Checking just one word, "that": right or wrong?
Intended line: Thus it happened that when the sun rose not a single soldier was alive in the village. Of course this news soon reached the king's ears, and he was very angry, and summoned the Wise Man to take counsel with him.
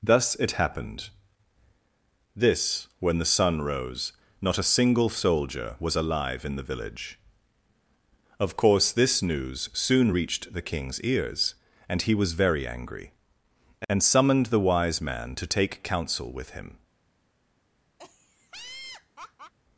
wrong